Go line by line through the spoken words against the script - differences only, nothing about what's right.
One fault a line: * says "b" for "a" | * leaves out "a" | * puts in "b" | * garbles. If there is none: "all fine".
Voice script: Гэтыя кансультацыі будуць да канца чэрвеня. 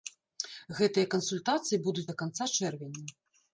all fine